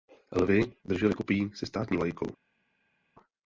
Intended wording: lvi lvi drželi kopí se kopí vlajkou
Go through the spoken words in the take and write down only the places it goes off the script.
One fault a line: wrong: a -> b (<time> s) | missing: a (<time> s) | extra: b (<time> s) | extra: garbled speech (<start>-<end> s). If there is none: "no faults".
missing: lvi (0.7 s)
wrong: kopí -> státní (1.7 s)